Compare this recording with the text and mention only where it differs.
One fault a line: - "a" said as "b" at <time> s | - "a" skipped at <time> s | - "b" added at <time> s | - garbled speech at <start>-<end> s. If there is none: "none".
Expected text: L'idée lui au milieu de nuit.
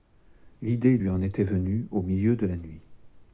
- "en était venue" added at 1.1 s
- "la" added at 2.4 s